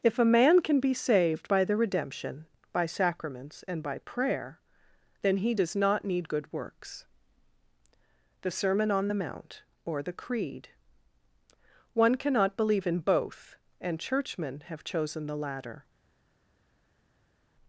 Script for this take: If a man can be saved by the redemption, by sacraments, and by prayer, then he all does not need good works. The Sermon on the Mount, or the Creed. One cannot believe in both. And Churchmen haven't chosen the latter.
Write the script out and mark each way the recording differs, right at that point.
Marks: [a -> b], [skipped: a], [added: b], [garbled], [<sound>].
If a man can be saved by the redemption, by sacraments, and by prayer, then he [skipped: all] does not need good works. The Sermon on the Mount, or the Creed. One cannot believe in both. And Churchmen [haven't -> have] chosen the latter.